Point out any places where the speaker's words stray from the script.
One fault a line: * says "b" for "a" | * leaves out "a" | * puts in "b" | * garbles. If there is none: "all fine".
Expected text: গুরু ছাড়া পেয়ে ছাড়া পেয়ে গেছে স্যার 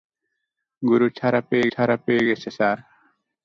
all fine